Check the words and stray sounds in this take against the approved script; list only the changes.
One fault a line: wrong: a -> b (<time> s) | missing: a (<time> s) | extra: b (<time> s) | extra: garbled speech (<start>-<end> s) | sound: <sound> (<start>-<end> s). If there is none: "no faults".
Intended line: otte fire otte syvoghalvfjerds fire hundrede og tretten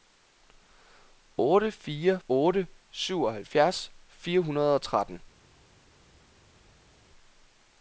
no faults